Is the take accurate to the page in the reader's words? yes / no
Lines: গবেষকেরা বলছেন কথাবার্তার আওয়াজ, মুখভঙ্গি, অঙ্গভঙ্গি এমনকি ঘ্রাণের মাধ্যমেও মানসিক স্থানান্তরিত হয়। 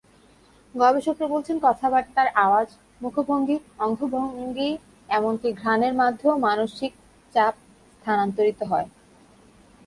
no